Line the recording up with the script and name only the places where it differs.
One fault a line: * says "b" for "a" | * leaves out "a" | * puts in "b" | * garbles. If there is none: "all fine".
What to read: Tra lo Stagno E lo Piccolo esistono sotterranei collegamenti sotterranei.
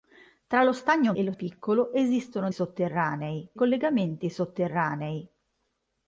all fine